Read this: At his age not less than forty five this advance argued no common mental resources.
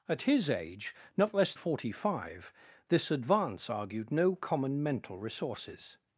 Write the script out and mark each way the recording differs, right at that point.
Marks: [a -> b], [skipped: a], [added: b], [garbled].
At his age not less [skipped: than] forty five this advance argued no common mental resources.